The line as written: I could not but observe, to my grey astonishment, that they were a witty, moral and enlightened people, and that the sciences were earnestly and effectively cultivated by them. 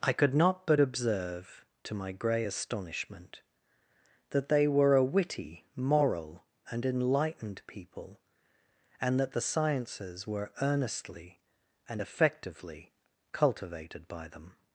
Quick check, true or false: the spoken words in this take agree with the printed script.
true